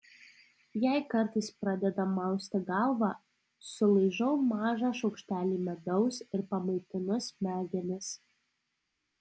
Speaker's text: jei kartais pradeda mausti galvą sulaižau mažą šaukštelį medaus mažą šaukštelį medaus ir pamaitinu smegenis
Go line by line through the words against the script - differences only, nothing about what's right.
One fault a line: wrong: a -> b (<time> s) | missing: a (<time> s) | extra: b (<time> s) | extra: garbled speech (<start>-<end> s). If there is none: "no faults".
missing: mažą šaukštelį medaus (6.2 s)